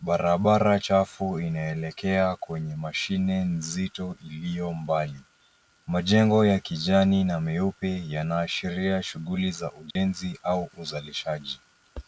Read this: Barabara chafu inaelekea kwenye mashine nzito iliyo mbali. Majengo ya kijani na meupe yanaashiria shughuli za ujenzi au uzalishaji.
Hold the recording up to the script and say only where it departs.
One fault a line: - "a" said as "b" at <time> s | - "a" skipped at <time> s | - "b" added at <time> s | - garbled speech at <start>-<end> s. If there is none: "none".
none